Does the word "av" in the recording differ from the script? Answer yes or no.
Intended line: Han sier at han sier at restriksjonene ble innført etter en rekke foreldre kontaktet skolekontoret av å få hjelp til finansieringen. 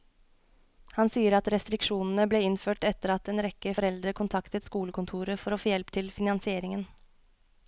yes